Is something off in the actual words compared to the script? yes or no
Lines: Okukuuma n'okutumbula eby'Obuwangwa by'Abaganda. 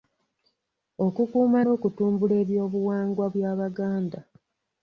no